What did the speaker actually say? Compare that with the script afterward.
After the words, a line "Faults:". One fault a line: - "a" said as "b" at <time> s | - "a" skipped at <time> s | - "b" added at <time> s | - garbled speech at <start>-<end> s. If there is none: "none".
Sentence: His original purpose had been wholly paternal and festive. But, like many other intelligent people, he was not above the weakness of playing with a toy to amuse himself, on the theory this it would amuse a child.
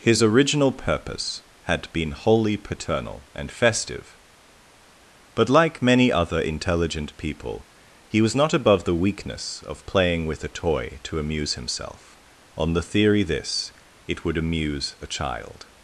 His original purpose had been wholly paternal and festive. But, like many other intelligent people, he was not above the weakness of playing with a toy to amuse himself, on the theory this it would amuse a child.
Faults:
none